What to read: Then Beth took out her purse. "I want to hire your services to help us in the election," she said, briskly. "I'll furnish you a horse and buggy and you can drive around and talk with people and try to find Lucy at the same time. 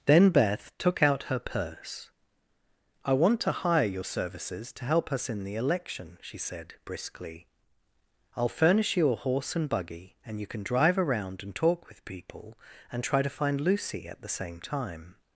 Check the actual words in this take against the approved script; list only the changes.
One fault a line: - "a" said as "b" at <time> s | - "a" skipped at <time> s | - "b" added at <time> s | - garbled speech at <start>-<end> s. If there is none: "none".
none